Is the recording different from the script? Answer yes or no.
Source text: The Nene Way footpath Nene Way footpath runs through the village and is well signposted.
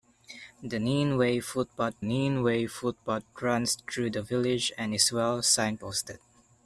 no